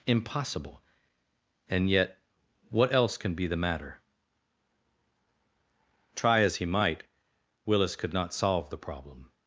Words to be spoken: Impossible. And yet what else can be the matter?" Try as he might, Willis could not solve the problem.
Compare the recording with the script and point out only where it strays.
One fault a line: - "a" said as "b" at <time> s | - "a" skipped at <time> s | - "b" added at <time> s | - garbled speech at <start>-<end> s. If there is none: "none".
none